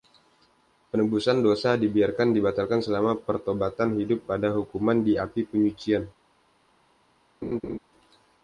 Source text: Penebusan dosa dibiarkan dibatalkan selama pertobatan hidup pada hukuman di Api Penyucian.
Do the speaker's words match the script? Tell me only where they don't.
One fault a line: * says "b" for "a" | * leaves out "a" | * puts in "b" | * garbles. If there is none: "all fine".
all fine